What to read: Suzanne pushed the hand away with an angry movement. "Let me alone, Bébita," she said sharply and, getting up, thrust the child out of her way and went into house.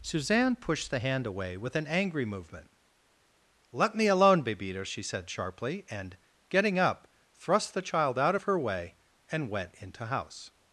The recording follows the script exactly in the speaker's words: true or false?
true